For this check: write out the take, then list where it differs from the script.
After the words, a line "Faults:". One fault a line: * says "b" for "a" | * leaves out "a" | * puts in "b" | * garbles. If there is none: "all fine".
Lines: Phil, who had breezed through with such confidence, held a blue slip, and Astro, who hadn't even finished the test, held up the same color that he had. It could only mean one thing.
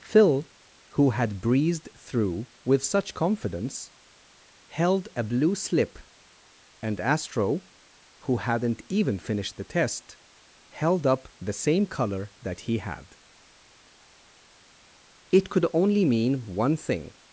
Phil, who had breezed through with such confidence, held a blue slip, and Astro, who hadn't even finished the test, held up the same color that he had. It could only mean one thing.
Faults:
all fine